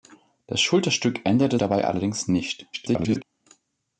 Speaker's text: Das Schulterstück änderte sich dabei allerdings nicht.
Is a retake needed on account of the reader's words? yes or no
yes